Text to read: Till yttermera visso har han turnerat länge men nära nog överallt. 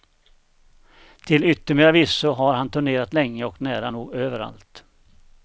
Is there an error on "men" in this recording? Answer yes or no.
yes